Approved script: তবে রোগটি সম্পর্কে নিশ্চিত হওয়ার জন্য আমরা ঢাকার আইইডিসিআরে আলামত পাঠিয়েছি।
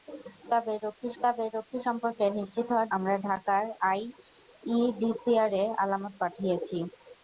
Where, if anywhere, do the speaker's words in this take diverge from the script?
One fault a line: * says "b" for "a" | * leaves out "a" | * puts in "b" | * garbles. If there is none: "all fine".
* puts in "তবে রোগটি"
* leaves out "জন্য"